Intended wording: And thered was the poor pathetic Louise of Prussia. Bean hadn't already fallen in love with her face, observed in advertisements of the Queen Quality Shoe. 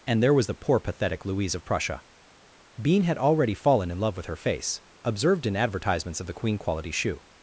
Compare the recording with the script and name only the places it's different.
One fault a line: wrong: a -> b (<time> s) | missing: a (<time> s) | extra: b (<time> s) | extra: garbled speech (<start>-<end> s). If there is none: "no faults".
wrong: thered -> there (0.2 s)
wrong: hadn't -> had (3.0 s)